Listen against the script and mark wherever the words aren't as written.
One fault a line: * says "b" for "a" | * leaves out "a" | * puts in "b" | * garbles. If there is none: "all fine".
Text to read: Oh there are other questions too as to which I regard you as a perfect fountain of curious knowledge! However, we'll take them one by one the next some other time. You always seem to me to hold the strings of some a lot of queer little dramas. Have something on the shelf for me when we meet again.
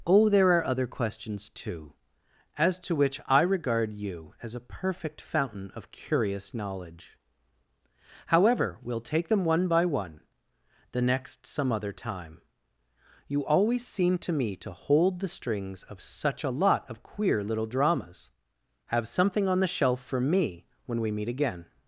* says "such" for "some"